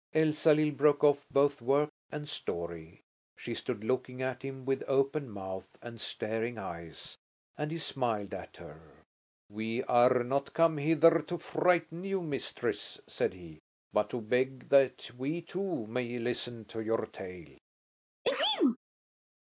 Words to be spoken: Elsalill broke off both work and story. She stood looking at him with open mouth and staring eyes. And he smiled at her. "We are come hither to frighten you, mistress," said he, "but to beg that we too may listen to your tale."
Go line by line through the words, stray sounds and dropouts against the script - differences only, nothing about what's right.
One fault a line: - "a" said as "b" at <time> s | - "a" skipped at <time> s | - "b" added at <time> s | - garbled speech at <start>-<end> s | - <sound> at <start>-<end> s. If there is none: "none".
- "not" added at 10.2 s
- sneeze at 18.2-18.8 s